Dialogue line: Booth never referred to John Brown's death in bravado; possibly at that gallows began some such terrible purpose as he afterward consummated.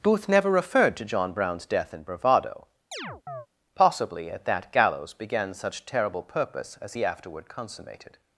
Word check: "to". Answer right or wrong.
right